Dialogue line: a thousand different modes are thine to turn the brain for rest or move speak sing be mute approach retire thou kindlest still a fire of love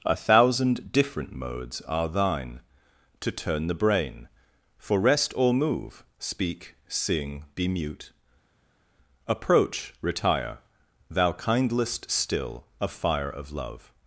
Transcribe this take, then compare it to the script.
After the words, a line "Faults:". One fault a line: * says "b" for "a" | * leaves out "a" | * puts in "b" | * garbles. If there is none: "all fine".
a thousand different modes are thine to turn the brain for rest or move speak sing be mute approach retire thou kindlest still a fire of love
Faults:
all fine